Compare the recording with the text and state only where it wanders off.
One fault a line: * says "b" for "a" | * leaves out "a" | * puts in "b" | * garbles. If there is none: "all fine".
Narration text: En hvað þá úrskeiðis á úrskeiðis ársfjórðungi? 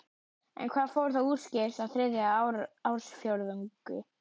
* puts in "fór"
* says "þriðja" for "úrskeiðis"